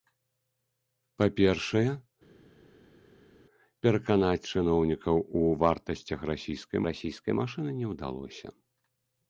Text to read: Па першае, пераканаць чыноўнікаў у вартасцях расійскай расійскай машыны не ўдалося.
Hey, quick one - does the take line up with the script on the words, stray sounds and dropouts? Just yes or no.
yes